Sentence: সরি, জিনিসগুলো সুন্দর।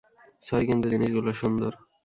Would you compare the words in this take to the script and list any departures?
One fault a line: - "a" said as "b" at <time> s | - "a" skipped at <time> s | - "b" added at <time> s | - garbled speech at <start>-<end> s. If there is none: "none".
- "কিন্তু" added at 0.7 s